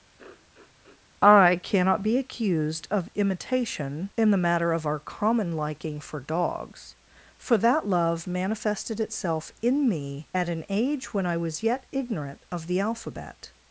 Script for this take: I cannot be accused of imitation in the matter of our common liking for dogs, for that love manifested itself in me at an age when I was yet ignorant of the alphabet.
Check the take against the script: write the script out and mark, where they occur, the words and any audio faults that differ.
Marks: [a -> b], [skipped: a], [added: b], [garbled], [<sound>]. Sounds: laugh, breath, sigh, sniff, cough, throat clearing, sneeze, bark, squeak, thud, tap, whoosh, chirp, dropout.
[sniff] I cannot be accused of imitation in the matter of our common liking for dogs, for that love manifested itself in me at an age when I was yet ignorant of the alphabet.